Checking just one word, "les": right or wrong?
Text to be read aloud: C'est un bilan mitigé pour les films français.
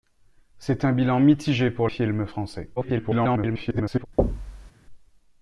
wrong